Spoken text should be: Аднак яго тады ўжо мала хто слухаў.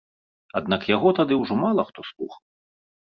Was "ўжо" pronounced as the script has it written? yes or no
yes